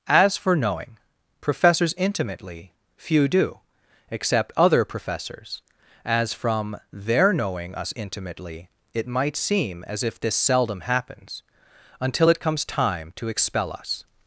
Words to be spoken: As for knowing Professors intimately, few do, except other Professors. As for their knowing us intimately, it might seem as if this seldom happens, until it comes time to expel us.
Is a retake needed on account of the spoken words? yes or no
yes